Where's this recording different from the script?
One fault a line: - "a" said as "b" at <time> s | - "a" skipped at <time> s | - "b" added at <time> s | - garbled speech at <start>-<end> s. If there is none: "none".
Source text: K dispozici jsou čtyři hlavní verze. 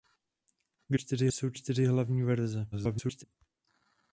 - "dispozici" said as "čtyři" at 0.9 s
- garbled speech at 2.7-3.2 s